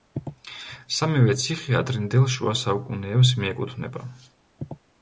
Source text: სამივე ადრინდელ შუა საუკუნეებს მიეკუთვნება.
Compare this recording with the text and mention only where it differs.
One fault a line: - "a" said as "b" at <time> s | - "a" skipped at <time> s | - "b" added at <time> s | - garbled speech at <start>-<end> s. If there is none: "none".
- "ციხე" added at 1.4 s